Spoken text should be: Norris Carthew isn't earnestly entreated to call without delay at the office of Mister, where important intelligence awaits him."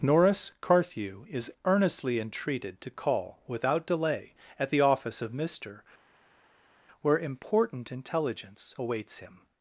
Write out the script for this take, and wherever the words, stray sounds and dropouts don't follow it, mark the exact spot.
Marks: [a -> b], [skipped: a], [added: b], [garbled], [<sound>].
Norris Carthew [isn't -> is] earnestly entreated to call without delay at the office of Mister, where important intelligence awaits him."